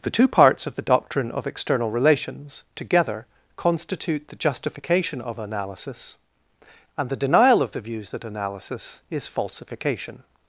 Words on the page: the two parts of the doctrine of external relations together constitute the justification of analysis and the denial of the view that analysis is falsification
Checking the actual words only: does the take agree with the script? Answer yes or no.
no